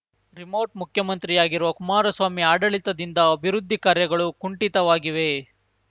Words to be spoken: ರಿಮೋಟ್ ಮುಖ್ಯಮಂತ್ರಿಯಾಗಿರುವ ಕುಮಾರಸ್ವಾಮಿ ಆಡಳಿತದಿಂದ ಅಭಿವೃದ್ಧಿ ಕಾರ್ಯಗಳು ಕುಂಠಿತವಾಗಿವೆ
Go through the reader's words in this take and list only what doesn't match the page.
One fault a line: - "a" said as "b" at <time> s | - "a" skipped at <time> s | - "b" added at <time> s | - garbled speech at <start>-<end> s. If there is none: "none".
none